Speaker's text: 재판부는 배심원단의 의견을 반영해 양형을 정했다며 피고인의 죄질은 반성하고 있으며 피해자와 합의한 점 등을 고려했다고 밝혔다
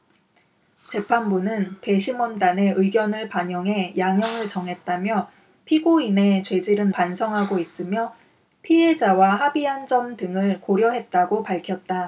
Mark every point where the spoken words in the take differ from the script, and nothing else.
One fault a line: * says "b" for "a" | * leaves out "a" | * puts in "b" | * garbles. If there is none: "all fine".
all fine